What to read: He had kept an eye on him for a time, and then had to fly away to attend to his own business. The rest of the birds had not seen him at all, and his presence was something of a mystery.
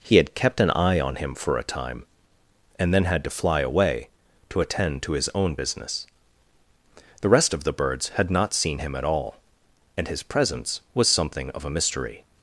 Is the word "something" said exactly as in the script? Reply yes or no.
yes